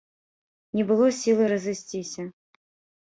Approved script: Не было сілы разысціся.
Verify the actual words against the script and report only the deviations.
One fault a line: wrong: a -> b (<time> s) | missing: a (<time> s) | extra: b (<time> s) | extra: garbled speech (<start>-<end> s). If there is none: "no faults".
no faults